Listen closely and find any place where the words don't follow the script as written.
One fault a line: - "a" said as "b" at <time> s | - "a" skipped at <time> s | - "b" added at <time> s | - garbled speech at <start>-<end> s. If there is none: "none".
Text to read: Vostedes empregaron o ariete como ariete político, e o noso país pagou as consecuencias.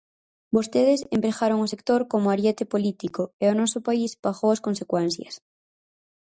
- "ariete" said as "sector" at 1.7 s